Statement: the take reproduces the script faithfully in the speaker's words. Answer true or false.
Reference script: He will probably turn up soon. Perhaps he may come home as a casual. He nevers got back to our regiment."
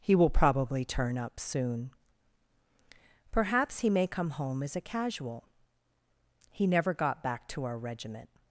false